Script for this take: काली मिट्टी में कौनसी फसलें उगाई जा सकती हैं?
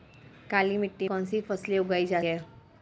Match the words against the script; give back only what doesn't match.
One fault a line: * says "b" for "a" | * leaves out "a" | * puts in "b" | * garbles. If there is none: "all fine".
* leaves out "में"
* leaves out "सकती"